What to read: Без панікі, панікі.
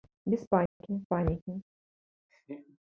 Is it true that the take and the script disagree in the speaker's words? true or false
false